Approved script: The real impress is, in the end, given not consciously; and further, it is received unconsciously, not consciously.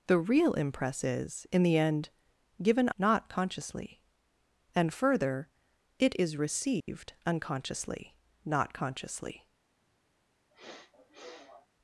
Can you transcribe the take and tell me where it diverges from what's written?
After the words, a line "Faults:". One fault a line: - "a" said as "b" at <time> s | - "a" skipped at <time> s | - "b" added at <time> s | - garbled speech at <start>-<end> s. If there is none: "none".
The real impress is, in the end, given not consciously; and further, it is received unconsciously, not consciously.
Faults:
none